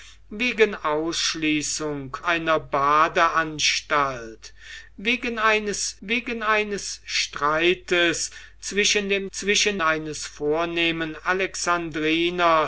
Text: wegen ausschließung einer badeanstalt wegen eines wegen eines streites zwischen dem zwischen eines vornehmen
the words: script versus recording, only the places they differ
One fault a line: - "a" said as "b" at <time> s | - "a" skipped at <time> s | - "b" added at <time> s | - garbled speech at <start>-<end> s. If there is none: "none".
none